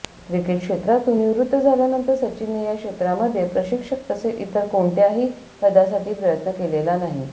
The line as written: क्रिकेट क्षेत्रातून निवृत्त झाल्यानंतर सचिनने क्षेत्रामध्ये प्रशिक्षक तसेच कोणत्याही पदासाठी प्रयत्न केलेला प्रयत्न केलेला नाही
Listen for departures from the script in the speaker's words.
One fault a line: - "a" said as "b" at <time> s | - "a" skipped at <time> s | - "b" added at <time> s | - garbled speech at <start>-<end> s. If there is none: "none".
- "या" added at 2.6 s
- "इतर" added at 4.4 s
- "प्रयत्न केलेला" skipped at 7.0 s